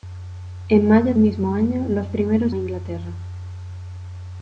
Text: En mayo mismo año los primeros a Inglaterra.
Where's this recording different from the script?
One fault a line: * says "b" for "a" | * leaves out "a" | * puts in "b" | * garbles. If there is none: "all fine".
all fine